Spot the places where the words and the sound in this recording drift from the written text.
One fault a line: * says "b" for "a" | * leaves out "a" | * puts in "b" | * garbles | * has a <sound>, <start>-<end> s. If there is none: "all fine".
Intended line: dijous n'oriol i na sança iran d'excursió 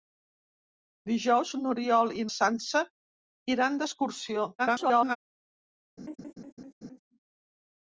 * leaves out "na"
* garbles
* has a laugh, 6.0-7.0 s